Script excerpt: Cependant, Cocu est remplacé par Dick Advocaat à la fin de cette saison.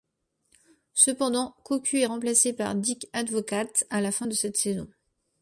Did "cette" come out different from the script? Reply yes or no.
no